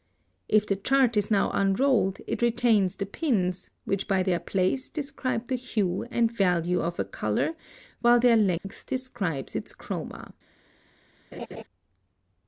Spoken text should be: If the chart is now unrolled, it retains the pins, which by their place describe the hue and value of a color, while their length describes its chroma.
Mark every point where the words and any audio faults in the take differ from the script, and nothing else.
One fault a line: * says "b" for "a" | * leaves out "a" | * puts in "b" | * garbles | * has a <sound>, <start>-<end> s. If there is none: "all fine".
* has a dropout, 8.6-8.6 s
* has a laugh, 11.3-11.6 s